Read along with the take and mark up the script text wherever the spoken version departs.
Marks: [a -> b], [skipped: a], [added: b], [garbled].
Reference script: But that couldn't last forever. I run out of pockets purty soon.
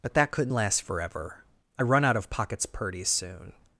But that couldn't last forever. I run out of pockets purty soon.